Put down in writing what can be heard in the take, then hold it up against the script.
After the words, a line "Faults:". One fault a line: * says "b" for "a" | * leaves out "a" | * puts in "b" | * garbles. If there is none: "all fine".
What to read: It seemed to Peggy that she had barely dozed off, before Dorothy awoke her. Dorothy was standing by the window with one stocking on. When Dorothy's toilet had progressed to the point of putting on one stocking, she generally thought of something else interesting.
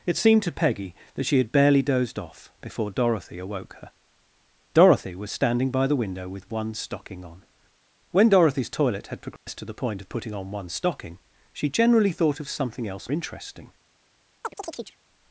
It seemed to Peggy that she had barely dozed off, before Dorothy awoke her. Dorothy was standing by the window with one stocking on. When Dorothy's toilet had progressed to the point of putting on one stocking, she generally thought of something else interesting.
Faults:
all fine